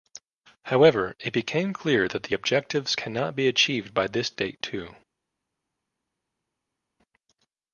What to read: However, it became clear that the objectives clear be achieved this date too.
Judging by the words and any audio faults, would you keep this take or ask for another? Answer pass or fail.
fail